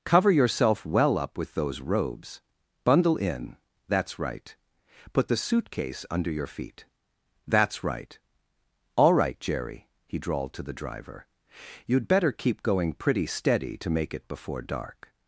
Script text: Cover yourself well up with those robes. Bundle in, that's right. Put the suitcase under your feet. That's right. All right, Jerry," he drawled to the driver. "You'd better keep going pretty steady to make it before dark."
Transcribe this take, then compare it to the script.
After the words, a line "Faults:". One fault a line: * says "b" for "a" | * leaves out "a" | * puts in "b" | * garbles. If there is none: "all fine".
Cover yourself well up with those robes. Bundle in, that's right. Put the suitcase under your feet. That's right. All right, Jerry," he drawled to the driver. "You'd better keep going pretty steady to make it before dark."
Faults:
all fine